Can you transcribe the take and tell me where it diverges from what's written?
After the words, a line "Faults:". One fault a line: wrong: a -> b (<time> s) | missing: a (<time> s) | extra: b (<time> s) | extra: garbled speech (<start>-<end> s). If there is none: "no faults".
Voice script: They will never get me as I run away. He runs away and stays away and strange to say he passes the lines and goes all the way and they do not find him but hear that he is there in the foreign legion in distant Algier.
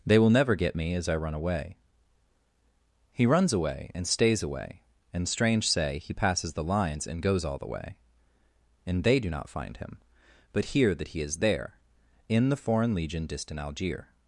They will never get me as I run away. He runs away and stays away and strange say he passes the lines and goes all the way and they do not find him but hear that he is there in the foreign legion distant Algier.
Faults:
missing: to (5.7 s)
missing: in (13.3 s)